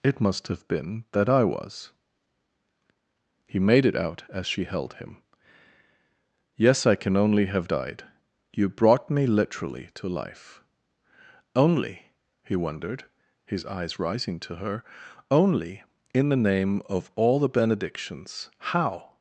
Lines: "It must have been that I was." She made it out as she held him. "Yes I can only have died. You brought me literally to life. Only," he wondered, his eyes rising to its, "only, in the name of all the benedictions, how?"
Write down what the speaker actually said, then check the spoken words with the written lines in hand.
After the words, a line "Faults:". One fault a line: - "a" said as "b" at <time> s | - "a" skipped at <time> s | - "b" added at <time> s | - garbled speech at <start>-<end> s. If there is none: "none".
"It must have been that I was." He made it out as she held him. "Yes I can only have died. You brought me literally to life. Only," he wondered, his eyes rising to her, "only, in the name of all the benedictions, how?"
Faults:
- "She" said as "He" at 3.5 s
- "its" said as "her" at 14.5 s